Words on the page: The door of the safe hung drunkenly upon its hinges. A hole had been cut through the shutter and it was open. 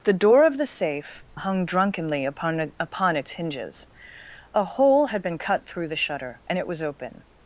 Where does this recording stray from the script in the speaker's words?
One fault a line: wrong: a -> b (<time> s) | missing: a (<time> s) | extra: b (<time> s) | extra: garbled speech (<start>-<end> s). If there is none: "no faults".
extra: upon (2.8 s)